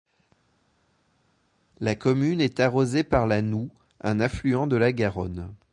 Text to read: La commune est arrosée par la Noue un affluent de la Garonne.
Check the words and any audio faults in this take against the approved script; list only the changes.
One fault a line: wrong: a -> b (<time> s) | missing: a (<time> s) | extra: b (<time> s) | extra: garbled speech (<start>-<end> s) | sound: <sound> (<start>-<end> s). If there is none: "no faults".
no faults